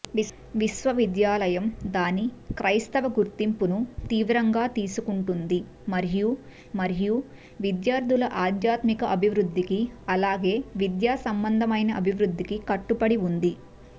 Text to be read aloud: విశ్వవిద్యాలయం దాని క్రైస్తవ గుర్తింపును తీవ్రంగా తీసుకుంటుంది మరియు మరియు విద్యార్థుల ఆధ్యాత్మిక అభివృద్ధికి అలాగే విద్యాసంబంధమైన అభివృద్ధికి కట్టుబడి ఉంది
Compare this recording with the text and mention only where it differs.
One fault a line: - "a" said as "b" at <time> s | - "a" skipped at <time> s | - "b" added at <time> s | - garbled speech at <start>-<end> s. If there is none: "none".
none